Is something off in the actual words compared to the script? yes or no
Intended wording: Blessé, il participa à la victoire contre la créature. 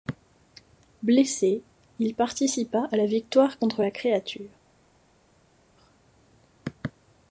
no